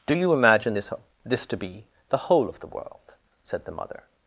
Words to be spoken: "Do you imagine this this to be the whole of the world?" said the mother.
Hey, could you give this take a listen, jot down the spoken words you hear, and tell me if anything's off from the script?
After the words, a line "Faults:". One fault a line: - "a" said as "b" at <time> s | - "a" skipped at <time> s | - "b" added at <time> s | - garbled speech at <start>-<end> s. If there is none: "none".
"Do you imagine this this to be the whole of the world?" said the mother.
Faults:
none